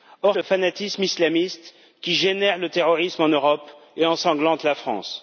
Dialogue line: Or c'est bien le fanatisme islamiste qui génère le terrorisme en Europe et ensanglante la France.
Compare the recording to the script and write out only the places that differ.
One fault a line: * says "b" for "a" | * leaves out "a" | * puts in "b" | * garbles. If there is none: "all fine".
* leaves out "c'est bien"